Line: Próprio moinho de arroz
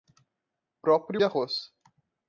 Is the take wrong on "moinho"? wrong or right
wrong